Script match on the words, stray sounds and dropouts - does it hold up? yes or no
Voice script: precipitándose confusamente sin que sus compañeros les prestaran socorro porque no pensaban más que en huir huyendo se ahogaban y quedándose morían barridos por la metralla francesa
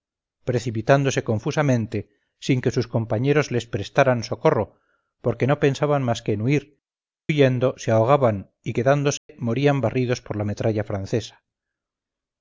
no